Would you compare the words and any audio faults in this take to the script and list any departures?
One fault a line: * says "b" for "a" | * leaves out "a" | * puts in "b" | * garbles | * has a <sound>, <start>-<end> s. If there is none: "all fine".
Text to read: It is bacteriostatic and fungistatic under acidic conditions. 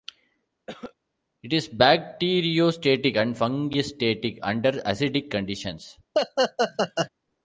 * has a cough, 0.7-0.9 s
* has a laugh, 6.1-7.1 s